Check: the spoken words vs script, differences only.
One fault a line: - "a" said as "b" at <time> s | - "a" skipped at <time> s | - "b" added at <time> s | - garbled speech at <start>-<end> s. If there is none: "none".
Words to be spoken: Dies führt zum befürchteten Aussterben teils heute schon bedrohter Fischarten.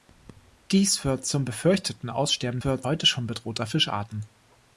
- "teils" said as "führt" at 2.6 s